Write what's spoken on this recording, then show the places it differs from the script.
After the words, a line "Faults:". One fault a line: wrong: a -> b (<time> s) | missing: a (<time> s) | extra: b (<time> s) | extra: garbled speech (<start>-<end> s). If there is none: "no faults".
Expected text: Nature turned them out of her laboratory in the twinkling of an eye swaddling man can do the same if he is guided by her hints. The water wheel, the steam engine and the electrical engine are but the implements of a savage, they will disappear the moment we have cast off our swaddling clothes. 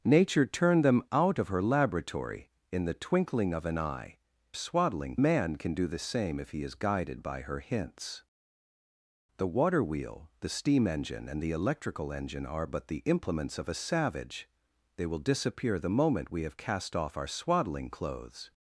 Nature turned them out of her laboratory in the twinkling of an eye swaddling man can do the same if he is guided by her hints. The water wheel, the steam engine and the electrical engine are but the implements of a savage, they will disappear the moment we have cast off our swaddling clothes.
Faults:
no faults